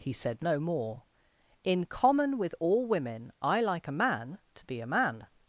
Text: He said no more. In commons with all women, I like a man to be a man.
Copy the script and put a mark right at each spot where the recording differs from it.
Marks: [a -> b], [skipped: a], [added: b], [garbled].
He said no more. In [commons -> common] with all women, I like a man to be a man.